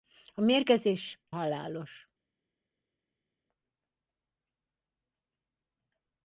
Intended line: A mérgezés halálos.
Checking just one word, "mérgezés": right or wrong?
right